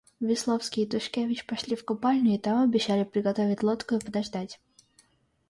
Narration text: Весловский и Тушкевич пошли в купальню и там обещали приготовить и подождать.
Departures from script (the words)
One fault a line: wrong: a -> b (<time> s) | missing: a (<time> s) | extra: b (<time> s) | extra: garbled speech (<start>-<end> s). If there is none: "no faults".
extra: лодку (3.6 s)